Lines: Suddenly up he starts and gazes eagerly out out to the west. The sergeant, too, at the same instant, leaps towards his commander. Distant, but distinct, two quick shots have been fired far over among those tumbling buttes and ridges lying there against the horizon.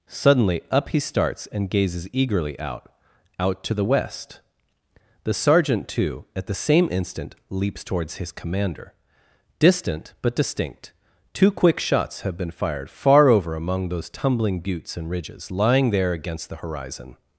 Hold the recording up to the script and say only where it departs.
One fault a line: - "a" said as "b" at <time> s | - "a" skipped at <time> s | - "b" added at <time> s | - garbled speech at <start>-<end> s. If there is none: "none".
none